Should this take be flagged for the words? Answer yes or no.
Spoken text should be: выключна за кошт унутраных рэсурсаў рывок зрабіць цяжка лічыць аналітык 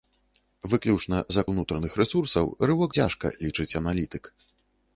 yes